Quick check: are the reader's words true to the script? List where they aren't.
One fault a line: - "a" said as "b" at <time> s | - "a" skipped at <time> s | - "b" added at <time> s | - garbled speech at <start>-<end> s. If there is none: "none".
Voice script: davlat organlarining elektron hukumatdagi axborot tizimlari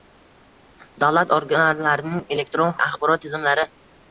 - "hukumatdagi" skipped at 2.7 s